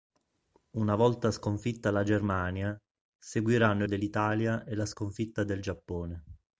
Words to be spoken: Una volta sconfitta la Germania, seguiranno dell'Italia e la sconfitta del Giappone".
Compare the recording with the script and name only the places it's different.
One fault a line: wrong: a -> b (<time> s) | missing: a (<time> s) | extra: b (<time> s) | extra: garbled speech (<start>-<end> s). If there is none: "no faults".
no faults